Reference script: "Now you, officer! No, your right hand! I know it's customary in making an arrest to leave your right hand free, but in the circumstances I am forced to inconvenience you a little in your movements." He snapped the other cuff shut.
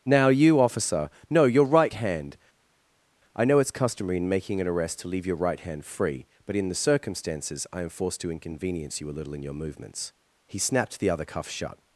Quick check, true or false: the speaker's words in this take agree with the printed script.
true